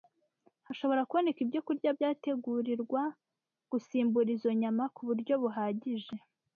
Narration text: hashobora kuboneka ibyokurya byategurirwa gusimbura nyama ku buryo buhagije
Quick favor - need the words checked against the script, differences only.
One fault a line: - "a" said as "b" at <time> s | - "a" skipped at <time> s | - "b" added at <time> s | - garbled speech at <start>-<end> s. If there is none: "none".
- "izo" added at 4.4 s